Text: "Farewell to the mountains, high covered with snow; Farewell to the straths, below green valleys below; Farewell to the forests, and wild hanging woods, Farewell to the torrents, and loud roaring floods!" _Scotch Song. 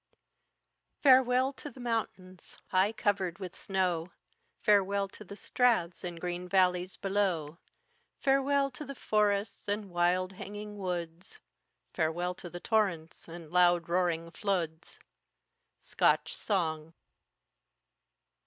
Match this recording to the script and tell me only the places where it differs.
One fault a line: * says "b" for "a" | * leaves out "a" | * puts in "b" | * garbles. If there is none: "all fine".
* says "and" for "below"